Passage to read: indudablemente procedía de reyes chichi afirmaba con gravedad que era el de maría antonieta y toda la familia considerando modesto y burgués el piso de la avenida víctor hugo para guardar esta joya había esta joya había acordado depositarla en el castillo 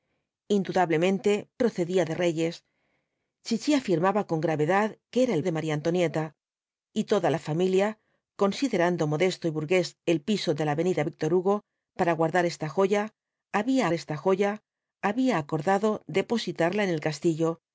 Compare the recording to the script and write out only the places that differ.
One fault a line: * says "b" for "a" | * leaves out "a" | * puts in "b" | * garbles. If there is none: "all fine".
all fine